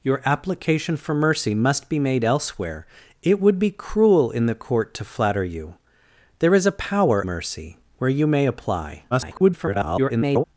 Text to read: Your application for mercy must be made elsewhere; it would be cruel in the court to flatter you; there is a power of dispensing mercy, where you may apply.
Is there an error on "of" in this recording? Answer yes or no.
yes